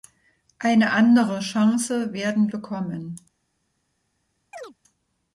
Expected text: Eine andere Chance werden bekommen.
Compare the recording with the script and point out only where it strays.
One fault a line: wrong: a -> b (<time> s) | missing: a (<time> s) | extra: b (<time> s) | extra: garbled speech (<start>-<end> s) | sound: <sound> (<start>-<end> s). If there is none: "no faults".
sound: chirp (4.5-4.7 s)